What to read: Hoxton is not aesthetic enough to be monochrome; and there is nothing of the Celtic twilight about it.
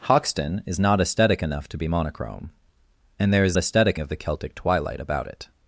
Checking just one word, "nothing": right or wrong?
wrong